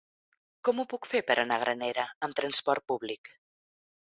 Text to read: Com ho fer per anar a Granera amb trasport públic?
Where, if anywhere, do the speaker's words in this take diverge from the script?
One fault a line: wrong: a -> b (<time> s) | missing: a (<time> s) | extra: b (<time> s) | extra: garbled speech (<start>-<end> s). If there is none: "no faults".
extra: puc (0.9 s)